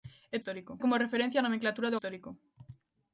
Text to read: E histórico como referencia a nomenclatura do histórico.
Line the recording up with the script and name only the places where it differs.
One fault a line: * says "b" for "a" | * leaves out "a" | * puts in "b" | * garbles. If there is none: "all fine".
all fine